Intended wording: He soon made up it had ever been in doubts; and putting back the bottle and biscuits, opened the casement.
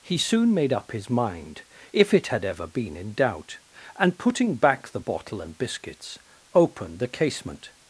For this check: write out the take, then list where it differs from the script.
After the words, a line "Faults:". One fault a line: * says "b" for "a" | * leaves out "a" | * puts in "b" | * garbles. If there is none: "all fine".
He soon made up his mind, if it had ever been in doubt; and putting back the bottle and biscuits, opened the casement.
Faults:
* puts in "his mind if"
* says "doubt" for "doubts"